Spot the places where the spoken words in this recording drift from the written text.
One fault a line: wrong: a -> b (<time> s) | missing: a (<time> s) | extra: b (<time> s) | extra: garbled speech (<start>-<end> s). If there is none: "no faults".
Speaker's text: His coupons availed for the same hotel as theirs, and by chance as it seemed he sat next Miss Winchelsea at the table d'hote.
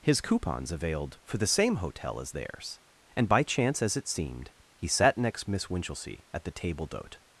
no faults